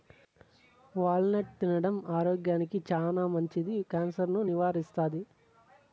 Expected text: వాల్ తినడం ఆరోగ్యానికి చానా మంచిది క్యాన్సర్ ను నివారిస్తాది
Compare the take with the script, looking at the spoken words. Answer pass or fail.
fail